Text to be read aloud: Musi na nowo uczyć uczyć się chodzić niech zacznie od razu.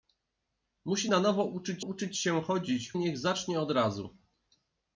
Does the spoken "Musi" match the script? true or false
true